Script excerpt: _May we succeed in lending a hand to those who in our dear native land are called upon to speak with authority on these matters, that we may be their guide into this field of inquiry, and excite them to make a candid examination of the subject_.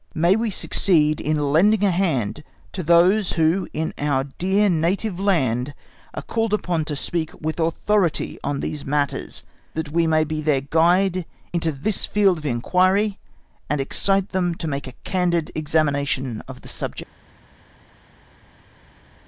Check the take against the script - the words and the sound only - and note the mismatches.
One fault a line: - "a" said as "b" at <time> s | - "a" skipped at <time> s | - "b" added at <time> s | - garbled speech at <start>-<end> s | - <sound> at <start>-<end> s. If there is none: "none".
none